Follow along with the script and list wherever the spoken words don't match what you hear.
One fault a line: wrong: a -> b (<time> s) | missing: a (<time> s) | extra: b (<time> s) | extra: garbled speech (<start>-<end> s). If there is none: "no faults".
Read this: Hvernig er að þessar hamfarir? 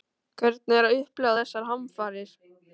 extra: upplifa (1.0 s)